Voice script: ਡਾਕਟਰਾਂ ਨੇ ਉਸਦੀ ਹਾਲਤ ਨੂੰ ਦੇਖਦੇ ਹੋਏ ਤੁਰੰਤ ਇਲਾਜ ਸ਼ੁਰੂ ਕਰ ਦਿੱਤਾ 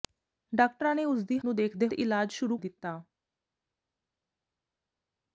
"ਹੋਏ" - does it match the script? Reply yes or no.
no